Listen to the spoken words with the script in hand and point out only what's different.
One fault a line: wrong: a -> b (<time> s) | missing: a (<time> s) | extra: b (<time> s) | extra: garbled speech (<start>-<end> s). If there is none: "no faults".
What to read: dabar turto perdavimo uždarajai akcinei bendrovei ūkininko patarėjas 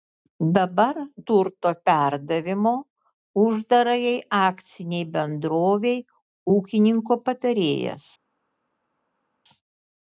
no faults